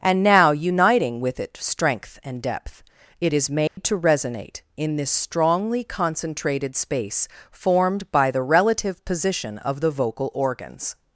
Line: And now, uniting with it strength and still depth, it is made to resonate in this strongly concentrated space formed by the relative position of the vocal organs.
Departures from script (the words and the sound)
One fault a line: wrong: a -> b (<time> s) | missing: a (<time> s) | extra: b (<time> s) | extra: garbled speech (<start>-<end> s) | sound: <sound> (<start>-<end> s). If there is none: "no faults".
missing: still (2.4 s)
sound: dropout (3.7-3.8 s)